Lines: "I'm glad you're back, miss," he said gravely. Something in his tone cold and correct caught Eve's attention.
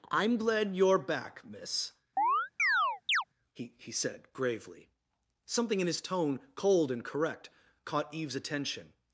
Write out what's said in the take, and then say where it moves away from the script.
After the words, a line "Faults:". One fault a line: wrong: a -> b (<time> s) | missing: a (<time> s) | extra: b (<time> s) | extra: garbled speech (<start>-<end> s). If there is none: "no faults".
"I'm glad you're back, miss," he he said gravely. Something in his tone cold and correct caught Eve's attention.
Faults:
extra: he (3.8 s)